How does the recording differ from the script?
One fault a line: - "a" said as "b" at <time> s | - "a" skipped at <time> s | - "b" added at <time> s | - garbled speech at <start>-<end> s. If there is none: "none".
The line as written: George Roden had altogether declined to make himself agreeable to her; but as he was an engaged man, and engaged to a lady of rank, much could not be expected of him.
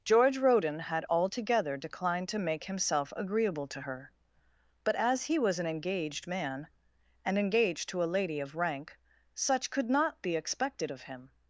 - "much" said as "such" at 9.3 s